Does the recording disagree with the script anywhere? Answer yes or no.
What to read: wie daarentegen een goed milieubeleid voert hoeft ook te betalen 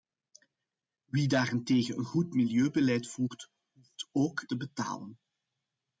no